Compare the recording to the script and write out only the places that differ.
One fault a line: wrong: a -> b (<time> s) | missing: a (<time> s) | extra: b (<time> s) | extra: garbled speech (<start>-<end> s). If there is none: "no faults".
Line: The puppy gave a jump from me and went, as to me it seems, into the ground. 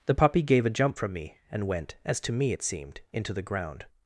wrong: seems -> seemed (2.6 s)